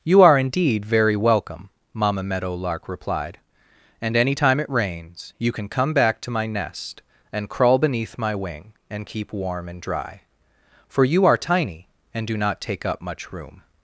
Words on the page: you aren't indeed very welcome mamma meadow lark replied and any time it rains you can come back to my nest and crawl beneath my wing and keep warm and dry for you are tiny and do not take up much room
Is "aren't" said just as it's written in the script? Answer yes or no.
no